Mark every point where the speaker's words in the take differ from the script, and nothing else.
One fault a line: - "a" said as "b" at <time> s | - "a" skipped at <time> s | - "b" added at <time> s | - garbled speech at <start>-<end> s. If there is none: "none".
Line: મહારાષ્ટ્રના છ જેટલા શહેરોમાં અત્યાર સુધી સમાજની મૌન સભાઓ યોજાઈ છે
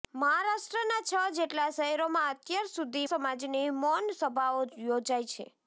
none